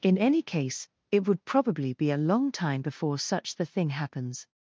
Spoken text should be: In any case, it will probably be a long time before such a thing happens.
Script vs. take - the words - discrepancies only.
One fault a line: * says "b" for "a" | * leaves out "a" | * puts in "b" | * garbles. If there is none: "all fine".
* says "would" for "will"
* says "the" for "a"